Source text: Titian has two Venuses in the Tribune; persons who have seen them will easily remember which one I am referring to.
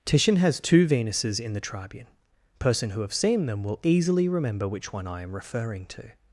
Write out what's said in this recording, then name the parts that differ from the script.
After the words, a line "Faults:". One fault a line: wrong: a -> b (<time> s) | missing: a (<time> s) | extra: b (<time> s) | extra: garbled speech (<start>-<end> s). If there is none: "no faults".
Titian has two Venuses in the Tribune; person who have seen them will easily remember which one I am referring to.
Faults:
wrong: persons -> person (2.6 s)